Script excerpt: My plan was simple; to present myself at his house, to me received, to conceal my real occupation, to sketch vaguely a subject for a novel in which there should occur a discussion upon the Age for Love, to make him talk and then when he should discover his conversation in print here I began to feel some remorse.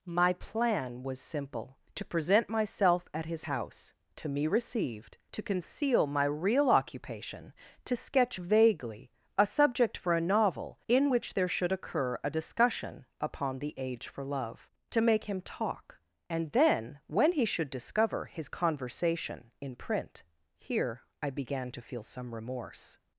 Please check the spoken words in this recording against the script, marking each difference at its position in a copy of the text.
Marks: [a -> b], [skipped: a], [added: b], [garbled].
My plan was simple; to present myself at his house, to me received, to conceal my real occupation, to sketch vaguely a subject for a novel in which there should occur a discussion upon the Age for Love, to make him talk and then when he should discover his conversation in print here I began to feel some remorse.